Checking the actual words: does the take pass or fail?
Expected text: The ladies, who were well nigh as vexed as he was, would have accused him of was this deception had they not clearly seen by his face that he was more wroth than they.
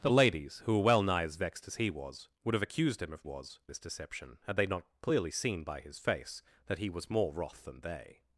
pass